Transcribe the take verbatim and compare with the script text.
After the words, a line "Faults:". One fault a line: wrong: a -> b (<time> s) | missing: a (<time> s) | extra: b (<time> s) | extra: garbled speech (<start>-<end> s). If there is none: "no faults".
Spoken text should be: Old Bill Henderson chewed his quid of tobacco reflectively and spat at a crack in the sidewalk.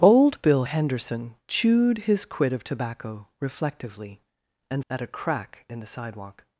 Old Bill Henderson chewed his quid of tobacco reflectively and at a crack in the sidewalk.
Faults:
missing: spat (4.9 s)